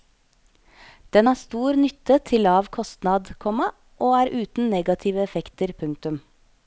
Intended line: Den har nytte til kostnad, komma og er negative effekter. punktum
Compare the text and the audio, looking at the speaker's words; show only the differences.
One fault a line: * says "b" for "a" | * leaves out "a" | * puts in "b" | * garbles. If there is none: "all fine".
* puts in "stor"
* puts in "lav"
* puts in "uten"